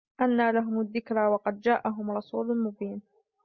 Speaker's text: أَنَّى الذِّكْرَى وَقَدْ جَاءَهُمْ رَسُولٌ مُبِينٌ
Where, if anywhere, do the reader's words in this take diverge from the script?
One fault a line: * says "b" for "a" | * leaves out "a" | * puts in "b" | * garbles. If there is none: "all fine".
* puts in "لَهُمُ"